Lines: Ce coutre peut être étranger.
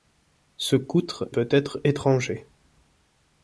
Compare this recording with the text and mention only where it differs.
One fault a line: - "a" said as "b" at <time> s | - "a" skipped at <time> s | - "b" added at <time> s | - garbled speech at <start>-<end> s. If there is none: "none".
none